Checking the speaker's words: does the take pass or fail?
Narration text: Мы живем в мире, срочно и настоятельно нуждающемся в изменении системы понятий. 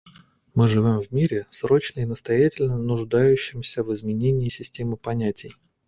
pass